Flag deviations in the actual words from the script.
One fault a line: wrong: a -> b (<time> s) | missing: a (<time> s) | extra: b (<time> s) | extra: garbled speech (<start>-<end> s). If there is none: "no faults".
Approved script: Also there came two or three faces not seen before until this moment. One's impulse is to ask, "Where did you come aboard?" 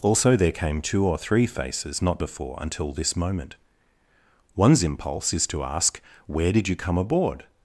missing: seen (2.2 s)